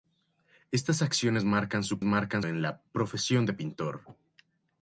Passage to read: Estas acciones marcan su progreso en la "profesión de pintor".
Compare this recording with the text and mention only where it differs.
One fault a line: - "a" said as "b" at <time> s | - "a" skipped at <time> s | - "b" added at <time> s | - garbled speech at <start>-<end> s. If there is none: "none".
- "progreso" said as "marcan" at 2.0 s